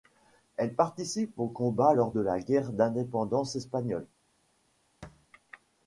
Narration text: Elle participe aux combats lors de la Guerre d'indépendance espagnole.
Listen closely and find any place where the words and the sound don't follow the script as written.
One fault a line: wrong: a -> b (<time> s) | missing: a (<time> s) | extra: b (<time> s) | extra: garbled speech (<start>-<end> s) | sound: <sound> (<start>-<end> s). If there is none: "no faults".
sound: thud (5.0-5.3 s)